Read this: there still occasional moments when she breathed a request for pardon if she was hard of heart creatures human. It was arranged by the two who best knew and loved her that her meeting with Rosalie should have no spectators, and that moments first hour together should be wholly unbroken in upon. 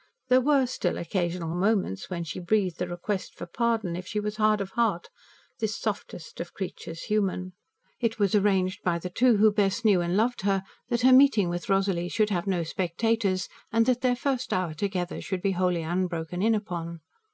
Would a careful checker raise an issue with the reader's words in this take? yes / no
yes